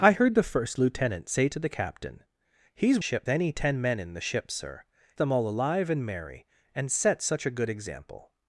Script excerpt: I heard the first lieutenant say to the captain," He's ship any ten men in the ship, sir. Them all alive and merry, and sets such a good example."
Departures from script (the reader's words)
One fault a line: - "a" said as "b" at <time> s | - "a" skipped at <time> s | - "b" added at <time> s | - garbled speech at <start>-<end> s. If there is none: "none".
none